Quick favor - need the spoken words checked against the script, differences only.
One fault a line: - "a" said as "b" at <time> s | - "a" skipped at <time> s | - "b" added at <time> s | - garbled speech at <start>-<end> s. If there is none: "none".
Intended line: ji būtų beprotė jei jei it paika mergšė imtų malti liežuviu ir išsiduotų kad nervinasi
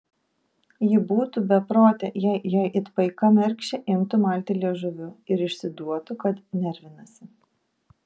none